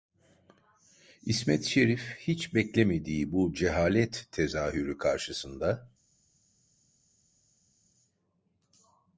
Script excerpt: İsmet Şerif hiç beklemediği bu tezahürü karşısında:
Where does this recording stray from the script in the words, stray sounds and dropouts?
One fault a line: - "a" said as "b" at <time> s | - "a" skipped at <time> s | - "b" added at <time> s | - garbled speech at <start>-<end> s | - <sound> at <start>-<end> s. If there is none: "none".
- "cehalet" added at 3.5 s